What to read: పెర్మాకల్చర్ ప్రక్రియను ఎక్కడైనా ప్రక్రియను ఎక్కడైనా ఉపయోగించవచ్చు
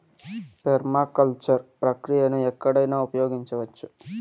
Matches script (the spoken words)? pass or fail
fail